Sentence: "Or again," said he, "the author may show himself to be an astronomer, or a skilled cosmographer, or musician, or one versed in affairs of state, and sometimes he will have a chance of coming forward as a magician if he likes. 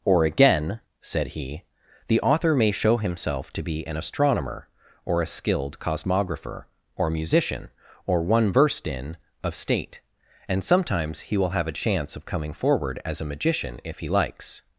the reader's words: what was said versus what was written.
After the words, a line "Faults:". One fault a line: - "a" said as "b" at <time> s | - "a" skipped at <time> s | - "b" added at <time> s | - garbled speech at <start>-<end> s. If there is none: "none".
"Or again," said he, "the author may show himself to be an astronomer, or a skilled cosmographer, or musician, or one versed in of state, and sometimes he will have a chance of coming forward as a magician if he likes.
Faults:
- "affairs" skipped at 9.2 s